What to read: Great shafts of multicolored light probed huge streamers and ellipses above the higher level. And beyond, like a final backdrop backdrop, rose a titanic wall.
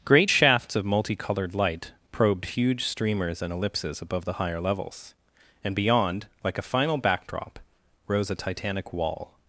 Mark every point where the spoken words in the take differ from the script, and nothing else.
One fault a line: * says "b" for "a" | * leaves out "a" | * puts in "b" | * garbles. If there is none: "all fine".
* says "levels" for "level"
* leaves out "backdrop"